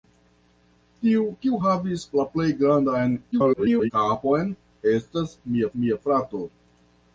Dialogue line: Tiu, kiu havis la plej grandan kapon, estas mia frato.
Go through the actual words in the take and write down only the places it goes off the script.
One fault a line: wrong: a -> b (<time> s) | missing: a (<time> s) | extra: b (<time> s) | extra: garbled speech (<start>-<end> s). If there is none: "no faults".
extra: garbled speech (3.3-3.9 s)
extra: mia (5.8 s)